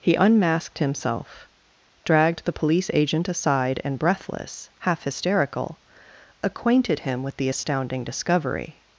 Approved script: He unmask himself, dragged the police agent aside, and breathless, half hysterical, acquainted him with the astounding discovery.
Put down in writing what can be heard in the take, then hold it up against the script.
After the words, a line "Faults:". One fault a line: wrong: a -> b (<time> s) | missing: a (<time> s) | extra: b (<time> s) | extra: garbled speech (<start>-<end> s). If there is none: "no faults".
He unmasked himself, dragged the police agent aside, and breathless, half hysterical, acquainted him with the astounding discovery.
Faults:
wrong: unmask -> unmasked (0.1 s)